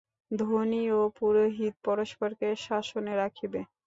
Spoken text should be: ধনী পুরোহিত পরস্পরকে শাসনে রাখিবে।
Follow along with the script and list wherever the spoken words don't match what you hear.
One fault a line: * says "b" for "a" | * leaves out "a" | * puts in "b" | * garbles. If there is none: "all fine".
* puts in "ও"